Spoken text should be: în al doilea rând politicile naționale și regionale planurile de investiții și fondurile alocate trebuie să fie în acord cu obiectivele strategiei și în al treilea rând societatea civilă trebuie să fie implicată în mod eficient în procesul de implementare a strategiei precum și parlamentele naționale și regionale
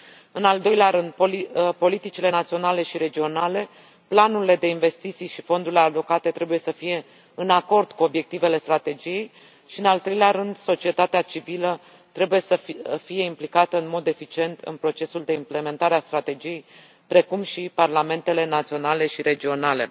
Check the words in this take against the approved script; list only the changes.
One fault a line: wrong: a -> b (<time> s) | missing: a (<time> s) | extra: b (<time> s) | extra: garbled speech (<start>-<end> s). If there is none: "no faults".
no faults